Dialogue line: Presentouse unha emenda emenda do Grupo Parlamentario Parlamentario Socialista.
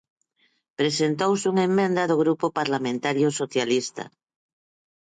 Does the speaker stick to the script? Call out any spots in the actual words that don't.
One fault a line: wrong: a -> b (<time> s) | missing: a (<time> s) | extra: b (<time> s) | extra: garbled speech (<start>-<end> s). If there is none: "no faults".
missing: emenda (2.0 s)
missing: Parlamentario (3.3 s)